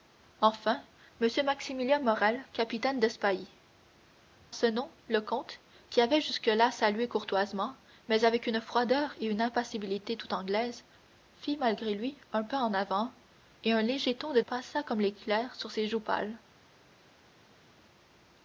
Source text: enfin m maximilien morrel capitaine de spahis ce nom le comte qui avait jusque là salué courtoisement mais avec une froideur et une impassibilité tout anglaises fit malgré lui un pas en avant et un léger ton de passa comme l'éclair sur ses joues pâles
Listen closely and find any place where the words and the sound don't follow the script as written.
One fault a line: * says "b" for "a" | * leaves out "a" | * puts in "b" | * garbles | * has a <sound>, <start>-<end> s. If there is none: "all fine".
all fine